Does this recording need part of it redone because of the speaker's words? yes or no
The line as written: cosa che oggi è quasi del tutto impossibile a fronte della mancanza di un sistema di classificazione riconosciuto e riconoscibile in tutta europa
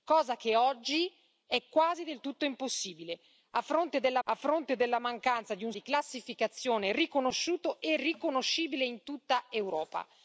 yes